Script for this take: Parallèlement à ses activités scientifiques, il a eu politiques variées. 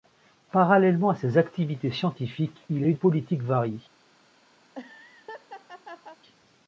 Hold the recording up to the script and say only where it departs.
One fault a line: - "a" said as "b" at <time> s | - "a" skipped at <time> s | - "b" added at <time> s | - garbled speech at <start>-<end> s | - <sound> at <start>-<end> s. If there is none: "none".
- laugh at 4.6-6.2 s